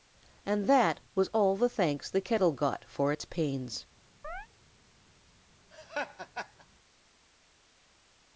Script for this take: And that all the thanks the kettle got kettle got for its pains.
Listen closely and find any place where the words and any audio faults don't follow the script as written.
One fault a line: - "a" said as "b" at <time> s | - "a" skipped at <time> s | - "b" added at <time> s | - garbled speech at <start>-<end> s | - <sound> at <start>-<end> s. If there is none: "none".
- "was" added at 1.1 s
- "kettle got" skipped at 2.9 s
- chirp at 4.2-4.5 s
- laugh at 5.7-6.7 s